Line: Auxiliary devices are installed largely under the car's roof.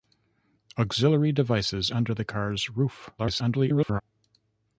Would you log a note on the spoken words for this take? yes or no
yes